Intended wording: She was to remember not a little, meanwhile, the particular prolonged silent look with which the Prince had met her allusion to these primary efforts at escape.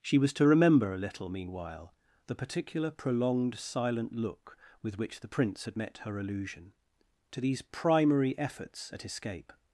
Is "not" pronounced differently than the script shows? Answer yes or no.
yes